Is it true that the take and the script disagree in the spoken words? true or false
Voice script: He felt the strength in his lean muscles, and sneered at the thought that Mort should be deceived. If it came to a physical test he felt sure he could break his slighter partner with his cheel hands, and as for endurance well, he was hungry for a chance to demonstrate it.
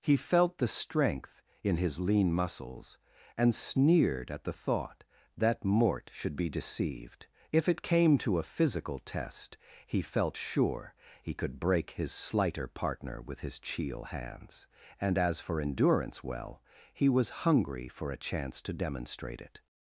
false